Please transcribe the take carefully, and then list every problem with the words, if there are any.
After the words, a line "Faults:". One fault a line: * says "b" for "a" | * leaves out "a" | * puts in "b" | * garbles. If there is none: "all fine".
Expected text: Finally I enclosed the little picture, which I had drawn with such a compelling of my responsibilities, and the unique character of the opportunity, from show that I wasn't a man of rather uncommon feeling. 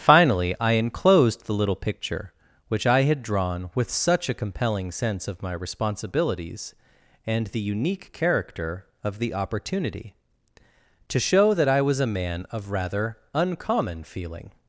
Finally I enclosed the little picture, which I had drawn with such a compelling sense of my responsibilities, and the unique character of the opportunity, to show that I was a man of rather uncommon feeling.
Faults:
* puts in "sense"
* says "to" for "from"
* says "was" for "wasn't"